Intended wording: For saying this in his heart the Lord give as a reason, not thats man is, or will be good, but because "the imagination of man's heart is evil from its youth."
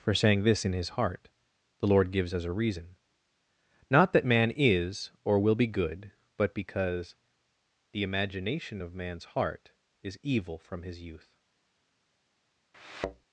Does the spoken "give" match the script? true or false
false